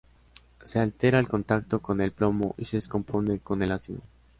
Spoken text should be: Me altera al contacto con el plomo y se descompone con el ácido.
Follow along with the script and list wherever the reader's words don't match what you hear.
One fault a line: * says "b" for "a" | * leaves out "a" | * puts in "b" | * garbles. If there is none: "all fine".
* says "Se" for "Me"